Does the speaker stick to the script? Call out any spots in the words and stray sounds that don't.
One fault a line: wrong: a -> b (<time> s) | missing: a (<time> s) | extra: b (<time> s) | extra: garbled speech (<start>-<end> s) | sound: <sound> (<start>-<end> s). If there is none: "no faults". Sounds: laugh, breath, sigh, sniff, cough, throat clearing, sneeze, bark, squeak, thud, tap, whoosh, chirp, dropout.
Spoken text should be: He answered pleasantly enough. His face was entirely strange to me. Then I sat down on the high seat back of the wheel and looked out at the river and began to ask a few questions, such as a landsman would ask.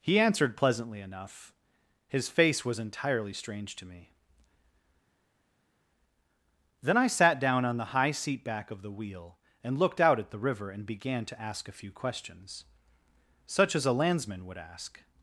no faults